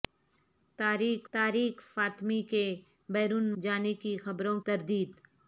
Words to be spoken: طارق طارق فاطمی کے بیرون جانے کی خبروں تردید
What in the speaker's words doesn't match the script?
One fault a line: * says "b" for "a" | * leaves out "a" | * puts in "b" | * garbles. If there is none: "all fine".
all fine